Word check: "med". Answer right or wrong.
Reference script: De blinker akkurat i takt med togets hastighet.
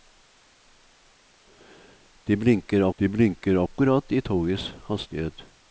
wrong